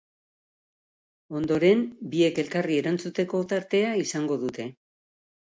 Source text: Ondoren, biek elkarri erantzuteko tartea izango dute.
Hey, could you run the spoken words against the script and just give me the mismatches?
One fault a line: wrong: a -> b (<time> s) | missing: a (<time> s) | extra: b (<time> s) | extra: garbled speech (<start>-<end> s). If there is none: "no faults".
no faults